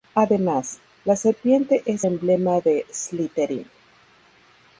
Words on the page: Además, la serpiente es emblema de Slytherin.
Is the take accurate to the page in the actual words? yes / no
yes